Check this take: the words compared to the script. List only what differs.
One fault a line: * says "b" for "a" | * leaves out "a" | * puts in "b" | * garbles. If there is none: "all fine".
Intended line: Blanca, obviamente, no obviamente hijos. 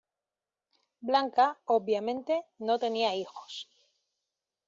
* says "tenía" for "obviamente"